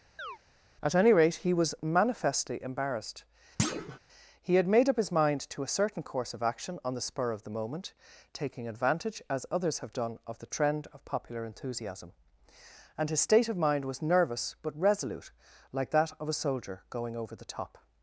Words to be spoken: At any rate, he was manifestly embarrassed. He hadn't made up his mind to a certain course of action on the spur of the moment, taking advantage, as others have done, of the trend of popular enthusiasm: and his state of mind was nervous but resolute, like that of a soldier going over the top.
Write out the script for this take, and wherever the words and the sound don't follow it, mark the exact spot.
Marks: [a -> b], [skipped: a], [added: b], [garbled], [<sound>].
[chirp] At any rate, he was manifestly embarrassed. [thud] He [hadn't -> had] made up his mind to a certain course of action on the spur of the moment, taking advantage, as others have done, of the trend of popular enthusiasm: and his state of mind was nervous but resolute, like that of a soldier going over the top.